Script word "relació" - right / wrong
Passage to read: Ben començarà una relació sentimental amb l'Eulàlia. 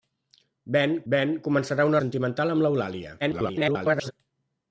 wrong